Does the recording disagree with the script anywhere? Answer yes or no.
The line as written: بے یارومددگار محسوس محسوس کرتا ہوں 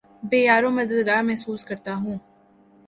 yes